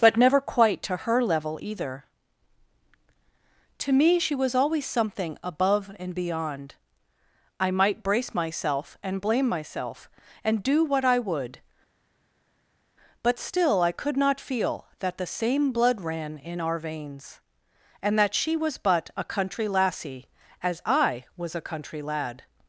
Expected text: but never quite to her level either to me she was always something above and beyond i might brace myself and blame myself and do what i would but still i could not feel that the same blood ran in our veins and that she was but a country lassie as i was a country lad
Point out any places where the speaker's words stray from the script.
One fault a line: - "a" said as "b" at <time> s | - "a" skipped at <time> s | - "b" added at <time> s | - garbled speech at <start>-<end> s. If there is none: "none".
none